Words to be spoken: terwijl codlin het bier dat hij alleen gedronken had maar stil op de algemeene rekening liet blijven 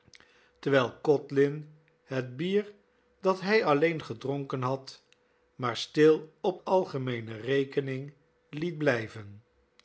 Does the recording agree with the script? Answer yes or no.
no